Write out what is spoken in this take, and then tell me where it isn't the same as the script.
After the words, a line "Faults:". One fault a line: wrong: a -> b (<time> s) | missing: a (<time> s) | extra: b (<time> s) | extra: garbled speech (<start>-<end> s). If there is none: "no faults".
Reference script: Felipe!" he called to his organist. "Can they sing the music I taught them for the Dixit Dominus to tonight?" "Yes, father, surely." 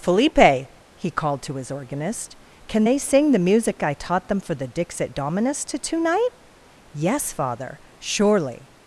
Felipe!" he called to his organist. "Can they sing the music I taught them for the Dixit Dominus to tonight?" "Yes, father, surely."
Faults:
no faults